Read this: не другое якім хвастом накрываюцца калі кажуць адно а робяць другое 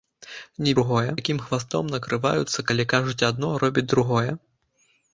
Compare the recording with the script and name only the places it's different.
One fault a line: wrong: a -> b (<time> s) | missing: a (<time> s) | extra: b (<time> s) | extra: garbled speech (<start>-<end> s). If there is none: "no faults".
no faults